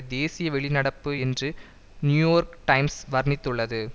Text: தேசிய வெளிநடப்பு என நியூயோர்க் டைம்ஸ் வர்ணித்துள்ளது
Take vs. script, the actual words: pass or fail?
fail